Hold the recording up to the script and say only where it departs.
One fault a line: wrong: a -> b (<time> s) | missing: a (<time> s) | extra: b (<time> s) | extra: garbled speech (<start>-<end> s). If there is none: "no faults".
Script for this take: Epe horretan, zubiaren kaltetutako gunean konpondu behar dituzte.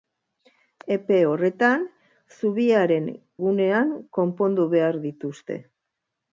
missing: kaltetutako (3.1 s)